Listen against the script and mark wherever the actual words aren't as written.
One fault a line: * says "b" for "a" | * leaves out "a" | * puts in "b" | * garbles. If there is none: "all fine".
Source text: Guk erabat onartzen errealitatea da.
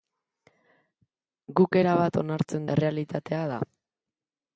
all fine